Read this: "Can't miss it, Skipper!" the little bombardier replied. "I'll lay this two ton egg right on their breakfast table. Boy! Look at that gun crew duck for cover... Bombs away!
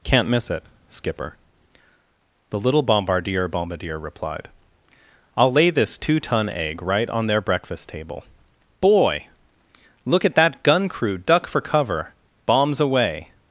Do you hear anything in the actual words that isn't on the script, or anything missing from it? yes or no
yes